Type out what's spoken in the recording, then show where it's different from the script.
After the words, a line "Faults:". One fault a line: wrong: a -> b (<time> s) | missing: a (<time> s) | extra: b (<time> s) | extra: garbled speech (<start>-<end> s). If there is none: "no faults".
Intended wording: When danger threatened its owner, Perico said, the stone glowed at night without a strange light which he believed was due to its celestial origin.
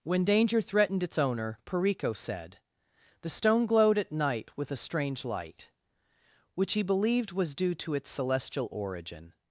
When danger threatened its owner, Perico said, the stone glowed at night with a strange light which he believed was due to its celestial origin.
Faults:
wrong: without -> with (4.6 s)